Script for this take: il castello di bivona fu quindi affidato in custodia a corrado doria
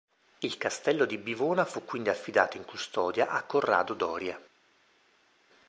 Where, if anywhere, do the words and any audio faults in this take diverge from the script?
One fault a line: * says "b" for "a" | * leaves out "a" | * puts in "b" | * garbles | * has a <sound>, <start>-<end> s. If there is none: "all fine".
all fine